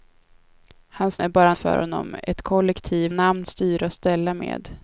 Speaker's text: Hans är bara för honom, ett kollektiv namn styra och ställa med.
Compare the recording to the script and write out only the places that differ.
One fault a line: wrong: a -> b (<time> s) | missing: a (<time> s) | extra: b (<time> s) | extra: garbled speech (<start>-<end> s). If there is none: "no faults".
no faults